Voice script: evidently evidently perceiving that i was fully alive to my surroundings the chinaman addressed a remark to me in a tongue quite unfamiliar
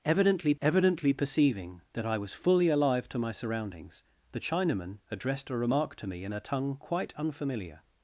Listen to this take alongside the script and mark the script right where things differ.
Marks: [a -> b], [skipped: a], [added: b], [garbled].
evidently evidently perceiving that i was fully alive to my surroundings the chinaman addressed a remark to me in a tongue quite unfamiliar